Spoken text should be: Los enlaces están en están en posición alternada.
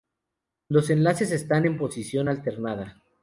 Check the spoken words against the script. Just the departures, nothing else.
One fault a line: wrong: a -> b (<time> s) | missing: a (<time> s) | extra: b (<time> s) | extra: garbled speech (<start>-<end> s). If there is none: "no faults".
missing: están en (1.8 s)